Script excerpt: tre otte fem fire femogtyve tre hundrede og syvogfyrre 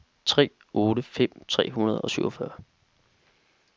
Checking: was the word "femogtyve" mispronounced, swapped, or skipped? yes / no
yes